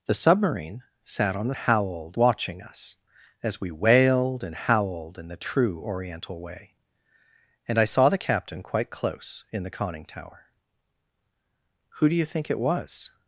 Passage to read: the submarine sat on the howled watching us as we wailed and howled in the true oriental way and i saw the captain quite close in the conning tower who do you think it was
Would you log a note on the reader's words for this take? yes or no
no